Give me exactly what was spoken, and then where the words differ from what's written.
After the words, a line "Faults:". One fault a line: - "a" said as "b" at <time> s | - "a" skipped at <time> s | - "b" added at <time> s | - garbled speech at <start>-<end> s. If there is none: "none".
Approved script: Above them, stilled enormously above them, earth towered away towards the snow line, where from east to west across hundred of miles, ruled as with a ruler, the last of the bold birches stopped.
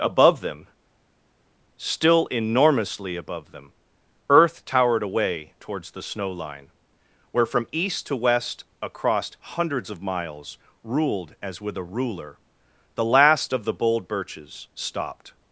Above them, still enormously above them, earth towered away towards the snow line, where from east to west across hundreds of miles, ruled as with a ruler, the last of the bold birches stopped.
Faults:
- "stilled" said as "still" at 1.8 s
- "hundred" said as "hundreds" at 9.4 s